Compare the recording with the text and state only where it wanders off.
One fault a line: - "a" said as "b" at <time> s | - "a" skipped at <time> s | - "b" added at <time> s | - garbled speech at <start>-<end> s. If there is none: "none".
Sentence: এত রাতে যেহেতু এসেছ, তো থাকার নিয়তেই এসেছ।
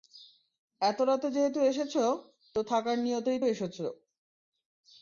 none